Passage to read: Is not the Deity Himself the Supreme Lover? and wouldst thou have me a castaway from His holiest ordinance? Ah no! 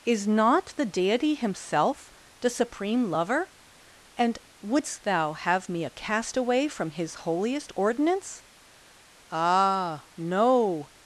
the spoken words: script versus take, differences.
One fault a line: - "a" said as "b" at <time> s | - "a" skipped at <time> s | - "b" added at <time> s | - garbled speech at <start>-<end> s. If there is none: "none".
none